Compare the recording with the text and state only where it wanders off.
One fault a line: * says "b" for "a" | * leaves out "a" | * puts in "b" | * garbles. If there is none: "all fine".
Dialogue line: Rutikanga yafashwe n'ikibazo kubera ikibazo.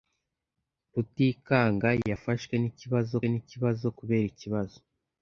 * puts in "n'ikibazo"